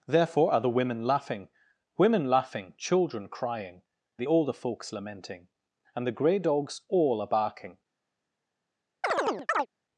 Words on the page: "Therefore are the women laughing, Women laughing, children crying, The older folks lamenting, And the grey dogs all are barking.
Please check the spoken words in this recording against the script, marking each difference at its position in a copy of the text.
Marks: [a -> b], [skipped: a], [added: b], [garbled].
"Therefore are the women laughing, Women laughing, children crying, The older folks lamenting, And the grey dogs all are barking.